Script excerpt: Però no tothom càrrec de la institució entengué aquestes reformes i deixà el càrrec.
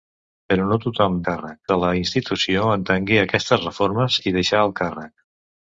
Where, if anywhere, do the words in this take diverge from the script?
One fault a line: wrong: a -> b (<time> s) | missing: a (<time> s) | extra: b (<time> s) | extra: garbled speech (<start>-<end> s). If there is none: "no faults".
no faults